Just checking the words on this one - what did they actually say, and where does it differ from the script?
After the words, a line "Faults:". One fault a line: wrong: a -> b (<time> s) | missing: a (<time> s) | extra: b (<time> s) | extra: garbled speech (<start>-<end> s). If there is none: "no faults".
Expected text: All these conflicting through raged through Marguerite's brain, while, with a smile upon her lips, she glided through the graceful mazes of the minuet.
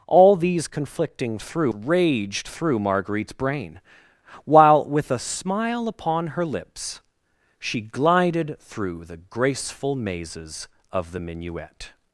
All these conflicting through raged through Marguerite's brain, while, with a smile upon her lips, she glided through the graceful mazes of the minuet.
Faults:
no faults